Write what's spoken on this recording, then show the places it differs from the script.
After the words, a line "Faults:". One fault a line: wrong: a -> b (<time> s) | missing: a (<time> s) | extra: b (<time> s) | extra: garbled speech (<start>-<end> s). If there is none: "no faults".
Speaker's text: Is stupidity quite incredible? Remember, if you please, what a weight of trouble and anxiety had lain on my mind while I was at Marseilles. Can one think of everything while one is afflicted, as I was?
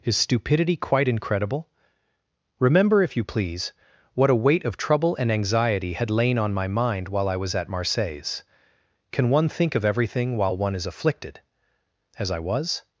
Is stupidity quite incredible? Remember, if you please, what a weight of trouble and anxiety had lain on my mind while I was at Marseilles. Can one think of everything while one is afflicted, as I was?
Faults:
no faults